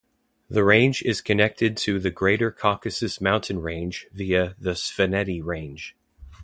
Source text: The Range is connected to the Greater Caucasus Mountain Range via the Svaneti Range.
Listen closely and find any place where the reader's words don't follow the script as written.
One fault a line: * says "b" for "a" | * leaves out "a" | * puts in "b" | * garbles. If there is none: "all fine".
all fine